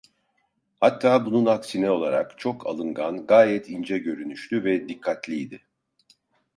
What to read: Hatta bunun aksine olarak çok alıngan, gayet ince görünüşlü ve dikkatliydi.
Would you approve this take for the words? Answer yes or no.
yes